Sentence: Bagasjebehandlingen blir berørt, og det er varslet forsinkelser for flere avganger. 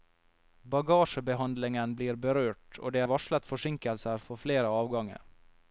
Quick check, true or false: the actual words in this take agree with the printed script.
true